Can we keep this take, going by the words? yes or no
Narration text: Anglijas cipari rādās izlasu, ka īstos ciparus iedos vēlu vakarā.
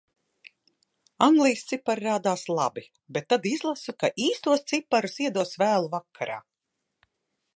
no